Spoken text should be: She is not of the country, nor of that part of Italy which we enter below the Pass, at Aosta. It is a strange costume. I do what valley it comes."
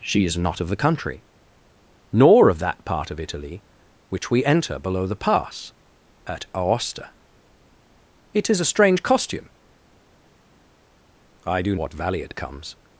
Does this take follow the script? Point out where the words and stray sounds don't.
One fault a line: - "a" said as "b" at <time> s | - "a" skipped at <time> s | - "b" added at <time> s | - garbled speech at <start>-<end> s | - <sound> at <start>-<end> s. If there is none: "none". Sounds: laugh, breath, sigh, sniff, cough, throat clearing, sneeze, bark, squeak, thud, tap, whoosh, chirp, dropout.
none